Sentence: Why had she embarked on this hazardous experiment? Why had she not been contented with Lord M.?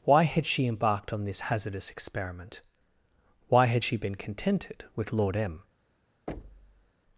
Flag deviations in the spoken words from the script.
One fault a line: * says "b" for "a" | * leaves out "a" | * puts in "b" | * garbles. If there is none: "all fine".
* leaves out "not"